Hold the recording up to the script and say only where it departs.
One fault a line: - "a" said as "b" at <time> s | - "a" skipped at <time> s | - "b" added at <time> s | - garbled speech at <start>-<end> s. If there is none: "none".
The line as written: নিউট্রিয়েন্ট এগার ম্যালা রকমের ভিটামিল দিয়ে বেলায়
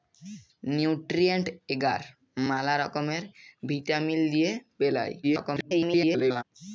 - garbled speech at 5.2-6.4 s